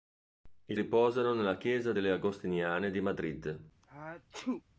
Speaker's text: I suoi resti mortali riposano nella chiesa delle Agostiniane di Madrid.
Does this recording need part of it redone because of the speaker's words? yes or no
yes